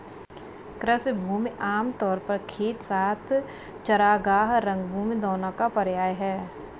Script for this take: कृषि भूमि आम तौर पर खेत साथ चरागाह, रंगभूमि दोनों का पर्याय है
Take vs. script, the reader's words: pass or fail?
pass